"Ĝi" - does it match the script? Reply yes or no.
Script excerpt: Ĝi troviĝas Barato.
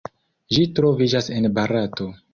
yes